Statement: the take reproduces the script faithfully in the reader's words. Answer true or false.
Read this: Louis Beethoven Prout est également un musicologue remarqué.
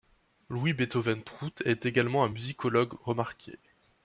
true